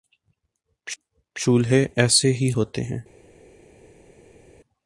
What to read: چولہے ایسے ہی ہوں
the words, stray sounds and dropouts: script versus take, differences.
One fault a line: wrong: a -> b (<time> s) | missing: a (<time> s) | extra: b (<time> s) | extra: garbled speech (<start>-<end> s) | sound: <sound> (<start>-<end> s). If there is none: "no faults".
extra: ہوتے (2.5 s)